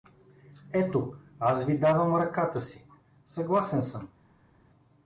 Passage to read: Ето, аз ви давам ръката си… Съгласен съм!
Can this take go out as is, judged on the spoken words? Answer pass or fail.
pass